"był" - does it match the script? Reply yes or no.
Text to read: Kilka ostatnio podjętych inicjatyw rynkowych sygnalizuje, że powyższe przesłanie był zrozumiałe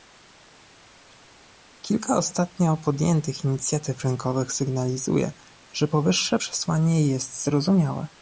no